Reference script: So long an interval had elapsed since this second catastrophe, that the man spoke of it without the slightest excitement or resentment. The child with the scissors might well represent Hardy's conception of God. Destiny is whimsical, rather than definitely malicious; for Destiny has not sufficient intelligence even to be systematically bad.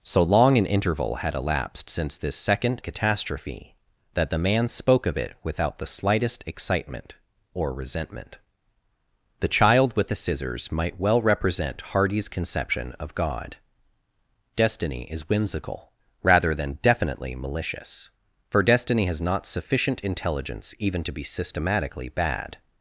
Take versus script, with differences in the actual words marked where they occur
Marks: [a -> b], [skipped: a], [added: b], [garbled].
So long an interval had elapsed since this second catastrophe, that the man spoke of it without the slightest excitement or resentment. The child with the scissors might well represent Hardy's conception of God. Destiny is whimsical, rather than definitely malicious; for Destiny has not sufficient intelligence even to be systematically bad.